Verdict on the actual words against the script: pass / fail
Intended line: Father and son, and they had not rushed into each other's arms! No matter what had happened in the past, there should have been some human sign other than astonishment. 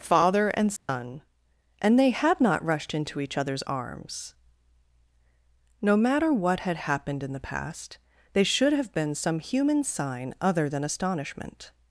fail